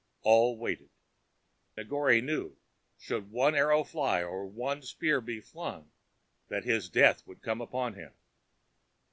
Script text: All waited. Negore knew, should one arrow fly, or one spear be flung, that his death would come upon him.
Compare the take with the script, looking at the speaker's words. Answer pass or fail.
pass